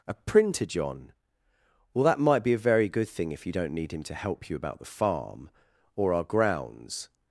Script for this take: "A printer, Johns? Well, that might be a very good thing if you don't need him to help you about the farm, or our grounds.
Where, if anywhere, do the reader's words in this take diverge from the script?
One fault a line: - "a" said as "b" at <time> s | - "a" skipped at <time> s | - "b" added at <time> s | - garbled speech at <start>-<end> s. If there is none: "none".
- "Johns" said as "John" at 0.7 s